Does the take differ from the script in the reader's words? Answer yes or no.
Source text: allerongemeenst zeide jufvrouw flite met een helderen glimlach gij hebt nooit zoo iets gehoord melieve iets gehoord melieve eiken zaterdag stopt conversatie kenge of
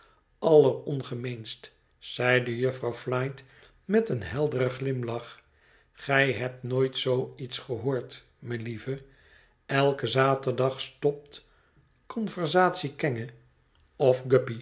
yes